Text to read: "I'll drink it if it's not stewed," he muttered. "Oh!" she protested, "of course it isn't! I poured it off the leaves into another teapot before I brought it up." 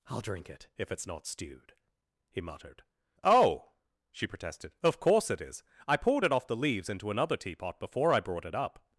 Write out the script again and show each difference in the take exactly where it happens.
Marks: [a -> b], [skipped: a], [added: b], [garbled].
"I'll drink it if it's not stewed," he muttered. "Oh!" she protested, "of course it [isn't! -> is] I poured it off the leaves into another teapot before I brought it up."